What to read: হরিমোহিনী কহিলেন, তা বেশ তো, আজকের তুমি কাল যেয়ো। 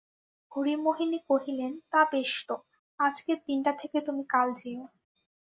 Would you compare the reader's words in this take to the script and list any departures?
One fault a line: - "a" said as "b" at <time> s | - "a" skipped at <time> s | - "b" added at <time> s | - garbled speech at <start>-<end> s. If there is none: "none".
- "দিনটা থেকে" added at 3.5 s